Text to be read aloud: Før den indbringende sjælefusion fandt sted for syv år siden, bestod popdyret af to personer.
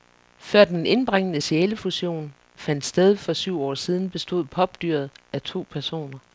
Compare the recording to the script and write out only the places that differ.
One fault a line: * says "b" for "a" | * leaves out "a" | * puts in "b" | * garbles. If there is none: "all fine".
all fine